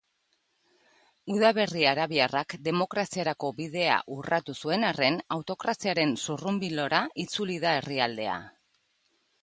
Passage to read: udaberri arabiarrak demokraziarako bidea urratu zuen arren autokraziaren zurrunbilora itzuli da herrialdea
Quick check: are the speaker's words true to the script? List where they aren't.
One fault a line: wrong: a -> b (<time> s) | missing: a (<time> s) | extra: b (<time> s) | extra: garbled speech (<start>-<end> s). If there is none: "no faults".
no faults